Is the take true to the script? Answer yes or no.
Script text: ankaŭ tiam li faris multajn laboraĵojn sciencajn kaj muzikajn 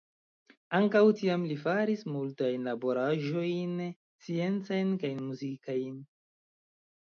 yes